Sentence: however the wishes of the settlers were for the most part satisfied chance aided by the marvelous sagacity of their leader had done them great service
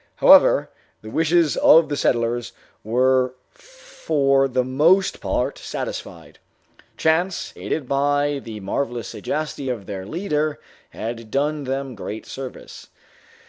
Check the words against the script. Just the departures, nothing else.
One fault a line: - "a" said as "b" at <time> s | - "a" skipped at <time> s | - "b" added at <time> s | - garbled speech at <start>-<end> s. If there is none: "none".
none